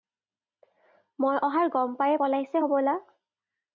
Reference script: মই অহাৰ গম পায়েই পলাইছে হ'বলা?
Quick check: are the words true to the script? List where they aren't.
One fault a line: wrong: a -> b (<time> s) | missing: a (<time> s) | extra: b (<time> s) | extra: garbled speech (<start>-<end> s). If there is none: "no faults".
no faults